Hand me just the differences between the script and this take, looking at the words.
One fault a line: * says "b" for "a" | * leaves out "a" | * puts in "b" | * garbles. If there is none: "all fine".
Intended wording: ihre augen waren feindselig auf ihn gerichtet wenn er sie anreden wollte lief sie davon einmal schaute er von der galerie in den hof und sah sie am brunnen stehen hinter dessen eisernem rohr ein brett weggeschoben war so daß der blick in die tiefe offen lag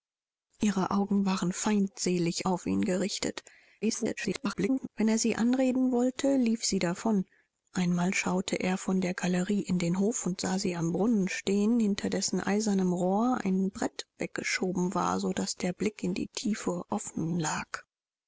* garbles